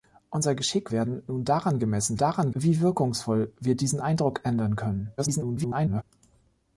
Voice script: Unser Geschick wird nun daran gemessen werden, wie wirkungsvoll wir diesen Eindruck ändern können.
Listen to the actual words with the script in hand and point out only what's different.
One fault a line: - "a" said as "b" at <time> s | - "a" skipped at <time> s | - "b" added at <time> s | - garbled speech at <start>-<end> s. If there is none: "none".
- "wird" said as "werden" at 0.9 s
- "werden" said as "daran" at 2.2 s
- garbled speech at 5.2-6.0 s